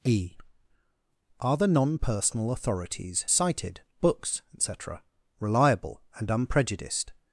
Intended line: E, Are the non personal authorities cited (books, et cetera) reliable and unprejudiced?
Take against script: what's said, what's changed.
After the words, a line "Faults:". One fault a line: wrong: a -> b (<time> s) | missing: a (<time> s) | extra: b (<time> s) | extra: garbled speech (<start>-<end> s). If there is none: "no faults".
E, Are the non personal authorities cited (books, et cetera) reliable and unprejudiced?
Faults:
no faults